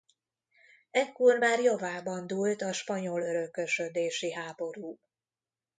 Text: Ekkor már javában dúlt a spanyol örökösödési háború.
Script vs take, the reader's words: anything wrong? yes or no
no